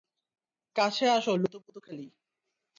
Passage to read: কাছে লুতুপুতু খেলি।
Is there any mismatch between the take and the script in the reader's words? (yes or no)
yes